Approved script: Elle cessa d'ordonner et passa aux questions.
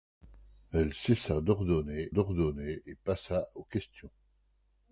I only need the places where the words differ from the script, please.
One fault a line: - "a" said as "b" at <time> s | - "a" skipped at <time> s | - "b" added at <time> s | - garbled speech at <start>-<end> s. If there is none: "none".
- "d'ordonner" added at 2.1 s